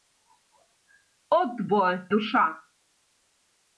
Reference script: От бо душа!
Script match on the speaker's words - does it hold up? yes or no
yes